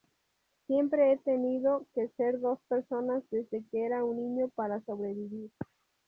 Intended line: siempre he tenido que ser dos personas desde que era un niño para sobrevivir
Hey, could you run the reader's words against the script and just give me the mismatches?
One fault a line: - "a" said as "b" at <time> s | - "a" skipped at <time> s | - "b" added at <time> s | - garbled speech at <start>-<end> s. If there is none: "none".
none